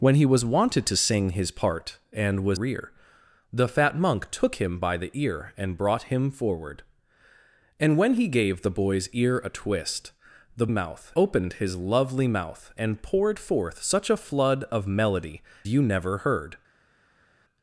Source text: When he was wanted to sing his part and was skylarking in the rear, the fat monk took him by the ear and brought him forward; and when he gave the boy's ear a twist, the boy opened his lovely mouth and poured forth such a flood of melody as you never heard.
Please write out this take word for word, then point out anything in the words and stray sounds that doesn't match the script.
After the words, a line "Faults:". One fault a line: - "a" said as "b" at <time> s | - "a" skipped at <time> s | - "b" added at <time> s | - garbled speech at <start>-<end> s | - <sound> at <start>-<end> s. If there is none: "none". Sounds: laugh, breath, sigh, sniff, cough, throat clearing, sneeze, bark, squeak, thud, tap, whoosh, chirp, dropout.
When he was wanted to sing his part and was rear, the fat monk took him by the ear and brought him forward; and when he gave the boy's ear a twist, the mouth opened his lovely mouth and poured forth such a flood of melody you never heard.
Faults:
- "skylarking in the" skipped at 2.6 s
- "boy" said as "mouth" at 10.7 s
- "as" skipped at 15.4 s